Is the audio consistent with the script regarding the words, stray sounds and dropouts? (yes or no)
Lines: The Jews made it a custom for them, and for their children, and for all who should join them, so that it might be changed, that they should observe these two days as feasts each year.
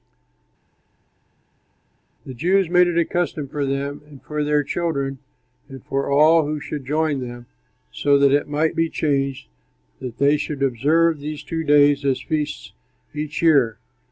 yes